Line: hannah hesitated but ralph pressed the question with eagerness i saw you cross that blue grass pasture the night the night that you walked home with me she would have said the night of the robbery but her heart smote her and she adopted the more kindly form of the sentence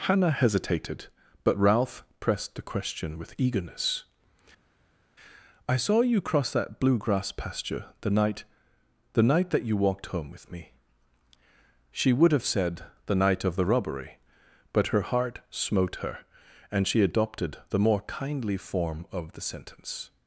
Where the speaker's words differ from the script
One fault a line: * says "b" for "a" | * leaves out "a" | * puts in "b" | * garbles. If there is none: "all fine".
all fine